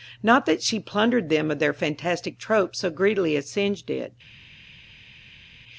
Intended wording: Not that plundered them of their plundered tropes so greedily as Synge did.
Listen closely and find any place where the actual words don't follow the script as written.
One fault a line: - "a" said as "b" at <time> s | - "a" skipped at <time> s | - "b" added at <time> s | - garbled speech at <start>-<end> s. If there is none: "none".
- "she" added at 0.6 s
- "plundered" said as "fantastic" at 1.7 s